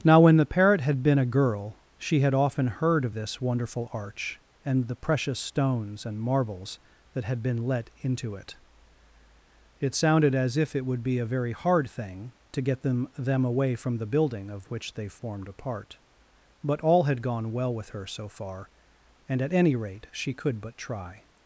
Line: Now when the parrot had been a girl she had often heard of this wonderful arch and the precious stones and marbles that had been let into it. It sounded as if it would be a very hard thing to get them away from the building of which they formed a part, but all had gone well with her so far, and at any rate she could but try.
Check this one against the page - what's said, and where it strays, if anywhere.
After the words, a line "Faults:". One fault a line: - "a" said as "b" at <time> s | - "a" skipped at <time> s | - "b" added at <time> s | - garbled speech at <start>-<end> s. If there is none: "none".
Now when the parrot had been a girl she had often heard of this wonderful arch and the precious stones and marbles that had been let into it. It sounded as if it would be a very hard thing to get them them away from the building of which they formed a part, but all had gone well with her so far, and at any rate she could but try.
Faults:
- "them" added at 13.2 s